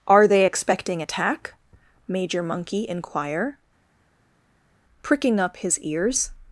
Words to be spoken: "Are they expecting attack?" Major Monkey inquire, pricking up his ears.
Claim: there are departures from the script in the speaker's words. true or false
false